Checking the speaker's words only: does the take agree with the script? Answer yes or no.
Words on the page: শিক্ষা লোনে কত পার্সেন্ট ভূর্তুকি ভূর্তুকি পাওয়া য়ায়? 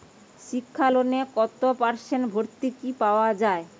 no